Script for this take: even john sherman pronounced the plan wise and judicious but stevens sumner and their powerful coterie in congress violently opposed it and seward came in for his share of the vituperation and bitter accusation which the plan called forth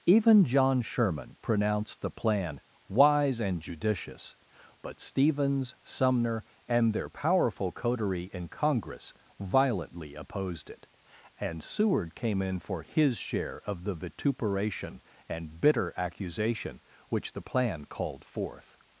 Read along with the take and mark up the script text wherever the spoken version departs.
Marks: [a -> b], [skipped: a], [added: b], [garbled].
even john sherman pronounced the plan wise and judicious but stevens sumner and their powerful coterie in congress violently opposed it and seward came in for his share of the vituperation and bitter accusation which the plan called forth